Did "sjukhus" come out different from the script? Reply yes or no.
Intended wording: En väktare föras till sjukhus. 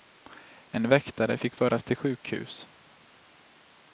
no